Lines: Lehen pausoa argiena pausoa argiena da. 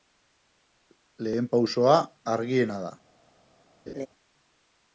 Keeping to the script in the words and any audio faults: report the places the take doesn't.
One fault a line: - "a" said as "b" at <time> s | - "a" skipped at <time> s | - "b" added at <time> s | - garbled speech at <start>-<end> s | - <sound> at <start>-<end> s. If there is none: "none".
- "pausoa argiena" skipped at 2.8 s
- laugh at 3.9-4.1 s